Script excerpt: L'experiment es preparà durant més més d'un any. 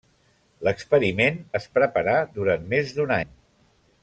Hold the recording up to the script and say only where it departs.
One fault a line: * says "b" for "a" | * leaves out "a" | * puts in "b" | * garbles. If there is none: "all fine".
* leaves out "més"